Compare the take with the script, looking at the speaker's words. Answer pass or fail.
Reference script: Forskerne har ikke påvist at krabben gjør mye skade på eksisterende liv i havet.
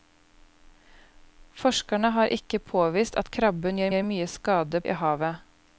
fail